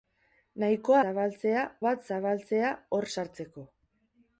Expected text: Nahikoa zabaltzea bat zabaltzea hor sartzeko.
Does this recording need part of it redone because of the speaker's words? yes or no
no